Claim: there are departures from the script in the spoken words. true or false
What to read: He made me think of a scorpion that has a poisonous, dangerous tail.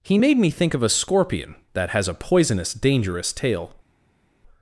false